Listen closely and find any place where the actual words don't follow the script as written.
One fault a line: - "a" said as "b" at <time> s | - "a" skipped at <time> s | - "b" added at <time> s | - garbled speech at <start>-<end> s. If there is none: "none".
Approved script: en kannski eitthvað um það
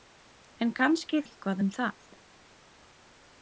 none